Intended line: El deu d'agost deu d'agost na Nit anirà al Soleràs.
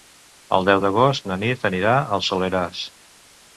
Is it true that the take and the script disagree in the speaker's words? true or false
true